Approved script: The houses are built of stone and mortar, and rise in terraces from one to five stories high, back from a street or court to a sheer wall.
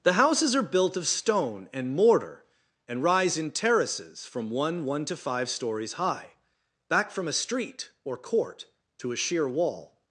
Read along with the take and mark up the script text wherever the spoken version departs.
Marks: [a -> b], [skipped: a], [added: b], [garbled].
The houses are built of stone and mortar, and rise in terraces from one [added: one] to five stories high, back from a street or court to a sheer wall.